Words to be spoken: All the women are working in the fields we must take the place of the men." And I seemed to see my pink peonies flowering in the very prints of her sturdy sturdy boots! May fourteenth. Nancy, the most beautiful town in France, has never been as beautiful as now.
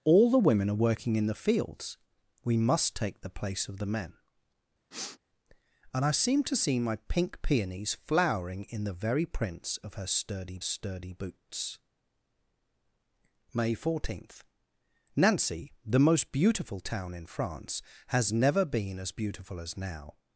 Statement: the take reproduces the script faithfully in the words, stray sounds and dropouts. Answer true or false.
false